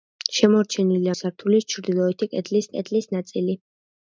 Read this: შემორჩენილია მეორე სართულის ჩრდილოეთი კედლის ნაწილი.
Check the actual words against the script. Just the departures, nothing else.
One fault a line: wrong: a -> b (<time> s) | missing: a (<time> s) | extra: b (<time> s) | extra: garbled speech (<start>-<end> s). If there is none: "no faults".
missing: მეორე (1.1 s)
extra: კედლის (2.8 s)